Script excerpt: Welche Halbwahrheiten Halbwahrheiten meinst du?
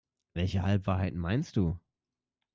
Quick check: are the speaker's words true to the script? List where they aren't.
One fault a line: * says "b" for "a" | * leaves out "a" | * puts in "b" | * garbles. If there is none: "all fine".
* leaves out "Halbwahrheiten"